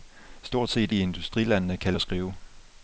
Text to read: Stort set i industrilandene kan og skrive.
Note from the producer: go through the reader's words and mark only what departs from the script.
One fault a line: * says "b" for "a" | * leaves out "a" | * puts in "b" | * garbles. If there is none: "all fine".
all fine